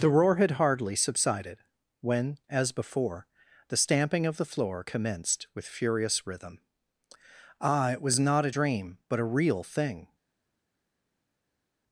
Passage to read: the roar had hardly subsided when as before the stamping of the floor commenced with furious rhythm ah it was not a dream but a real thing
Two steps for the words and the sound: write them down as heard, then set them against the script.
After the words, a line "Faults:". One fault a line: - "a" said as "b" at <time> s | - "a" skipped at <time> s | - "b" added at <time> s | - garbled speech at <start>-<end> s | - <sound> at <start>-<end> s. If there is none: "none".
the roar had hardly subsided when as before the stamping of the floor commenced with furious rhythm ah it was not a dream but a real thing
Faults:
none